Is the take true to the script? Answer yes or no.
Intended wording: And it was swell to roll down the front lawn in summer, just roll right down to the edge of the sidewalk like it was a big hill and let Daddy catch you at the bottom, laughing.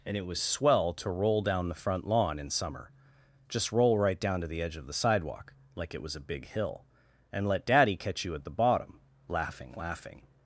no